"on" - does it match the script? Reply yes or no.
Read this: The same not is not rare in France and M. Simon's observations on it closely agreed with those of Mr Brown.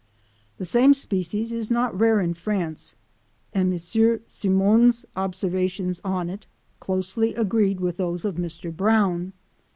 yes